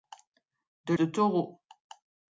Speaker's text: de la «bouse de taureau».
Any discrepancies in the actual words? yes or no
yes